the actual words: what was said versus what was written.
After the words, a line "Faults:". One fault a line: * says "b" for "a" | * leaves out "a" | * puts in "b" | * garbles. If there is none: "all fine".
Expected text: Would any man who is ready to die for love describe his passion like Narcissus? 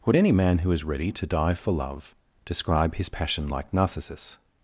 Would any man who is ready to die for love describe his passion like Narcissus?
Faults:
all fine